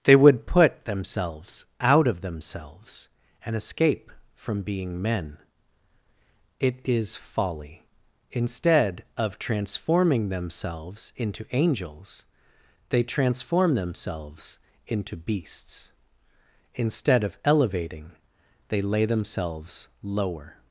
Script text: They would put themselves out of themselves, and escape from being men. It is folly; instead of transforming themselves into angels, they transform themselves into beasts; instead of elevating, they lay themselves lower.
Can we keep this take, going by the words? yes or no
yes